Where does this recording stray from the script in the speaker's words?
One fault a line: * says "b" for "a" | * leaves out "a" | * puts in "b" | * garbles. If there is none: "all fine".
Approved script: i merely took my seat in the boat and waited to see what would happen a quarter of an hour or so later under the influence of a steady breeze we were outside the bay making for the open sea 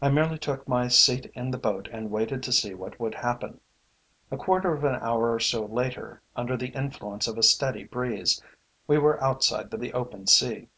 * leaves out "bay making for"